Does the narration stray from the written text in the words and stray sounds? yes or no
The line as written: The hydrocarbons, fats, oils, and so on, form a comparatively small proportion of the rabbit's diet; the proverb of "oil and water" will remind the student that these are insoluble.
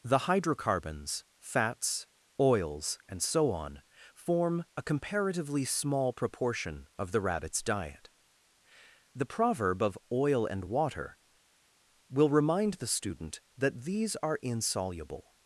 no